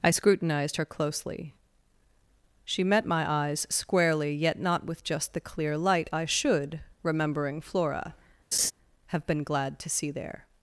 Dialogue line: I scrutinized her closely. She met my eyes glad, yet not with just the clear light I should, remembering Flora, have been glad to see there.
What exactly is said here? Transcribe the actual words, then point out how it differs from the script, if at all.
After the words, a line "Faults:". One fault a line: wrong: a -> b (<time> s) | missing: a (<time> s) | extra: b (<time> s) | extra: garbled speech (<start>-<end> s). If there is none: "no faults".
I scrutinized her closely. She met my eyes squarely, yet not with just the clear light I should, remembering Flora, have been glad to see there.
Faults:
wrong: glad -> squarely (3.7 s)